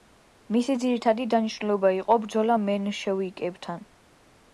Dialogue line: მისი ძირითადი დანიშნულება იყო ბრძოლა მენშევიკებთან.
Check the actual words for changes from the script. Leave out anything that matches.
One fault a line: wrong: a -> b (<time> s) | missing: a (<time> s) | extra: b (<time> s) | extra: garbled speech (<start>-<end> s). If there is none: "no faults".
no faults